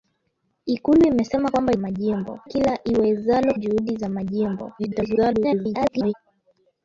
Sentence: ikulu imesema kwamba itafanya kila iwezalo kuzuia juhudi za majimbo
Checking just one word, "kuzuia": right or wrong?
wrong